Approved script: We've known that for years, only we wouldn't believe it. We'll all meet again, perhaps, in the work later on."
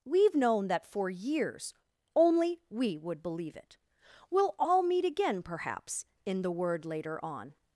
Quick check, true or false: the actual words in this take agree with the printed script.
false